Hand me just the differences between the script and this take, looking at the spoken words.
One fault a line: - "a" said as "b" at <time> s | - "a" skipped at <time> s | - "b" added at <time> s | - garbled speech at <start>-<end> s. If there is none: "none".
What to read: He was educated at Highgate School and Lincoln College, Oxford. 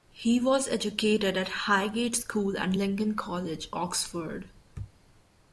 none